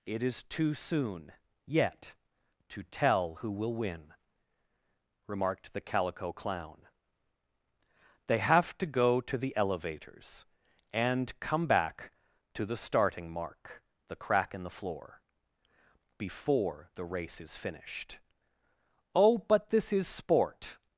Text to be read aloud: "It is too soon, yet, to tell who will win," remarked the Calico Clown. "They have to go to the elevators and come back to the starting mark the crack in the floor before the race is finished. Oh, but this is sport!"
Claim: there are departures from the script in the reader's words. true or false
false